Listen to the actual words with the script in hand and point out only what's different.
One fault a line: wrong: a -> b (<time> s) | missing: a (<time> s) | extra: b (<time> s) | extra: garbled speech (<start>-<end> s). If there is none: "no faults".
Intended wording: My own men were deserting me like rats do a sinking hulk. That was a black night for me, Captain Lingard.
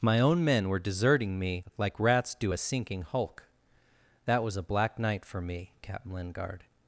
no faults